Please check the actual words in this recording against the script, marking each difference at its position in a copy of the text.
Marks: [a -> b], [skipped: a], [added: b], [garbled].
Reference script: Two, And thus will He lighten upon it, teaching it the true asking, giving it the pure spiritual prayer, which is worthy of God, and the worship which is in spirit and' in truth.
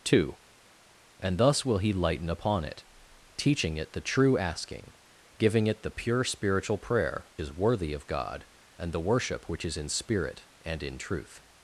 Two, And thus will He lighten upon it, teaching it the true asking, giving it the pure spiritual prayer, [skipped: which] is worthy of God, and the worship which is in spirit and' in truth.